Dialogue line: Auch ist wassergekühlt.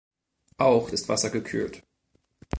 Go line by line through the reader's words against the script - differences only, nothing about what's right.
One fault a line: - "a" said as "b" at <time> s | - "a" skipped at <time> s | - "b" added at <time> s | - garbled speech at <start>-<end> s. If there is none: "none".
none